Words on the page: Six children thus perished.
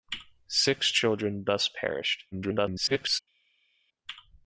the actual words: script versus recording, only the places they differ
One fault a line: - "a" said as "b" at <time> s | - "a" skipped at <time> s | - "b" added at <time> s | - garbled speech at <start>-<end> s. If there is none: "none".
- garbled speech at 2.3-3.2 s